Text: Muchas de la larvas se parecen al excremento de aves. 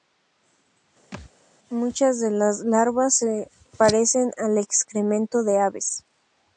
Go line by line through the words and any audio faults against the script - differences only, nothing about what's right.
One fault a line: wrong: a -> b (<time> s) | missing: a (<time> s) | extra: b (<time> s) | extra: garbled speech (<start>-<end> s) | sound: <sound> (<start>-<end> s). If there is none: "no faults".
sound: thud (1.1-1.3 s)
wrong: la -> las (2.3 s)